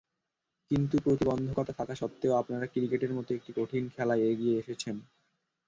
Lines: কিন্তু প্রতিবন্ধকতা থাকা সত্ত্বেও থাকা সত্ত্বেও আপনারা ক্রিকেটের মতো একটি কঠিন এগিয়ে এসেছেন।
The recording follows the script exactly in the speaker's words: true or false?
false